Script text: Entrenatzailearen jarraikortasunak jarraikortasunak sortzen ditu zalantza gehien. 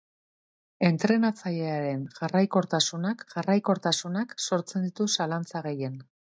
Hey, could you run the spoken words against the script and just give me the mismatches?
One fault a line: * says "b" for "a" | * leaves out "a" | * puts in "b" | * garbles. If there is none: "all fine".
all fine